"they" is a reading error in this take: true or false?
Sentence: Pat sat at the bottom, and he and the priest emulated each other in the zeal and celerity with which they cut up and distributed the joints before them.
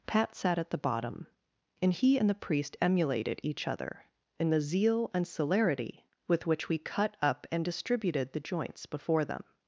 true